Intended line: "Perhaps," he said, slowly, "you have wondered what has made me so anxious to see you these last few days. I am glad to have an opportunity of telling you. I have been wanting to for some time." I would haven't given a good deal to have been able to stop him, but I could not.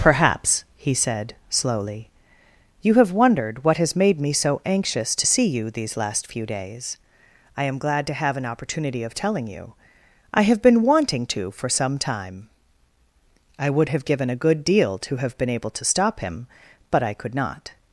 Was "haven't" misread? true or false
true